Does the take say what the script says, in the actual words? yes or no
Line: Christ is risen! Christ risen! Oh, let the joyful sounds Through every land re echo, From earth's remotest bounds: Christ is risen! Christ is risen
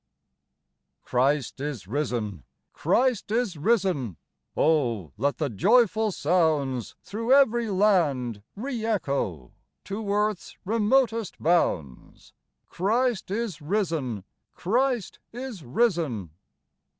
no